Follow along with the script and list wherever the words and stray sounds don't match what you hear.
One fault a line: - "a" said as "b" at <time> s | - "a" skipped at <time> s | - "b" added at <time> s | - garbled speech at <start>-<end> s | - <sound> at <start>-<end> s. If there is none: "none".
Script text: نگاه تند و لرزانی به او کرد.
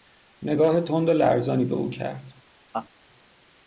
- laugh at 2.7-2.9 s